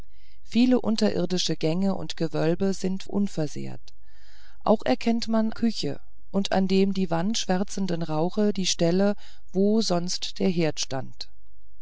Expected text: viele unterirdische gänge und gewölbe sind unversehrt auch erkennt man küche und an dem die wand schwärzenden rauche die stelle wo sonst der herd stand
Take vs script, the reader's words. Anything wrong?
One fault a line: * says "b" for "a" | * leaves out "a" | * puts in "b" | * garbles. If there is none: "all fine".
all fine